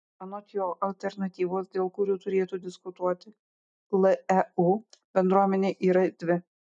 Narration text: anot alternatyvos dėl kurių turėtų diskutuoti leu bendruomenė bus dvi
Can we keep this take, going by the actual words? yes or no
no